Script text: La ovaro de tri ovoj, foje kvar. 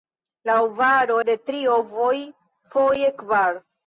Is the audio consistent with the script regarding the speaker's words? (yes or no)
yes